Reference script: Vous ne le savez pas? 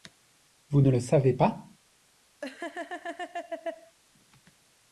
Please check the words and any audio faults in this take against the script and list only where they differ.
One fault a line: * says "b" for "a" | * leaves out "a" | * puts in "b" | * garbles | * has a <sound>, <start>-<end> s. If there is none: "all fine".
* has a laugh, 2.4-4.0 s